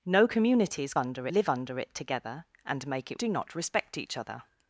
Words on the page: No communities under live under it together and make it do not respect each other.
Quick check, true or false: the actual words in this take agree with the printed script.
true